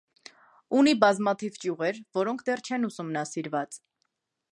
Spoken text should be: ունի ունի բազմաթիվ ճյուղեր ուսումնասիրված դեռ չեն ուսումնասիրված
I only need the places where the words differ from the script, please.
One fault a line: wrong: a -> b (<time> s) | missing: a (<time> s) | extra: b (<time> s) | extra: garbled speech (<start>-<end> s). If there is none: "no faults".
missing: ունի (0.9 s)
wrong: ուսումնասիրված -> որոնք (2.2 s)